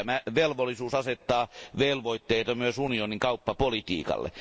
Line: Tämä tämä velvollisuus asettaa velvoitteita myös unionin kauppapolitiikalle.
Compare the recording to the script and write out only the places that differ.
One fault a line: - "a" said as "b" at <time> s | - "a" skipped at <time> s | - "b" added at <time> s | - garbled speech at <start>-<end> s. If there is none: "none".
- "tämä" skipped at 0.2 s